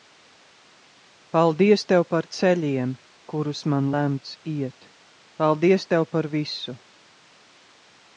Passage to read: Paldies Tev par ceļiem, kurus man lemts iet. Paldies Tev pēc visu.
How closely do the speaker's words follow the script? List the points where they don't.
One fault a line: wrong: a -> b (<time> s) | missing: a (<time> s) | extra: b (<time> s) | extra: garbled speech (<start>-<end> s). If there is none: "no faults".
wrong: pēc -> par (6.1 s)